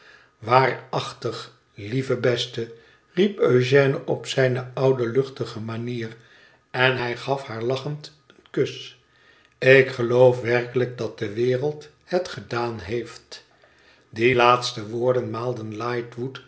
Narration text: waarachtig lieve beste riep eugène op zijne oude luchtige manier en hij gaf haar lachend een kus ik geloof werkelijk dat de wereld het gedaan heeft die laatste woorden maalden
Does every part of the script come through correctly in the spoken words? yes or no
yes